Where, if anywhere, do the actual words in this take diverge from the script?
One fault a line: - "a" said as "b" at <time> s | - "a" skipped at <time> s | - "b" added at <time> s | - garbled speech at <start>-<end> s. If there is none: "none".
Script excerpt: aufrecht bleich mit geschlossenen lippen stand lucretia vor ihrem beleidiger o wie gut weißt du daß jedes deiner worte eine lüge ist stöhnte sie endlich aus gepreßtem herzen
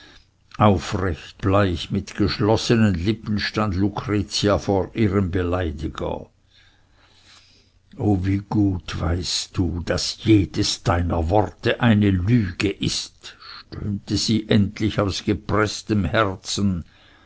none